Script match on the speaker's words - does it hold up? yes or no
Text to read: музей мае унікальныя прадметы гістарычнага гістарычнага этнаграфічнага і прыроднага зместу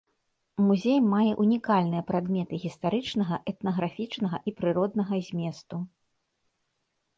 no